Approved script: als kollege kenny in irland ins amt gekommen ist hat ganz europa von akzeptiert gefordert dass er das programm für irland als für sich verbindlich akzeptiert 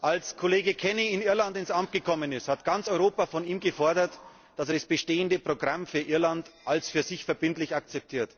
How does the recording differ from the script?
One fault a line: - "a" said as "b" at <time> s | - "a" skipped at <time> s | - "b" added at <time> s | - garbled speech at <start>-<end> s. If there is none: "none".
- "akzeptiert" said as "ihm" at 3.4 s
- "bestehende" added at 4.9 s